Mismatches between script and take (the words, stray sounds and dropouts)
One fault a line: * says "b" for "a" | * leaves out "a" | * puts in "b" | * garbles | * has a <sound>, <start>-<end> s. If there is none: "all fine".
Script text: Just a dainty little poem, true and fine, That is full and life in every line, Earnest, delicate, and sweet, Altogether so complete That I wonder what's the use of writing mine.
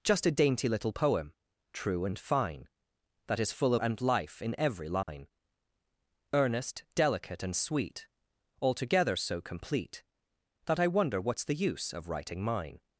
* has a dropout, 5.0-5.1 s